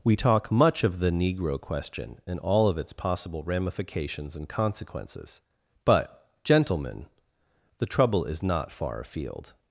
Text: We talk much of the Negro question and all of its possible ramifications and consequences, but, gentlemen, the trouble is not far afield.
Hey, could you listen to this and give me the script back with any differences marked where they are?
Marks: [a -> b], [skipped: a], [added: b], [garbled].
We talk much of the Negro question and all of its possible ramifications and consequences, but, gentlemen, the trouble is not far afield.